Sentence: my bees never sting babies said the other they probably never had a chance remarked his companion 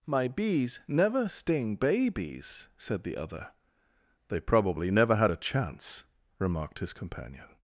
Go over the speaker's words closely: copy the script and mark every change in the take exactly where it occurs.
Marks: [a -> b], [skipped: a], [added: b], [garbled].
my bees never sting babies said the other they probably never had a chance remarked his companion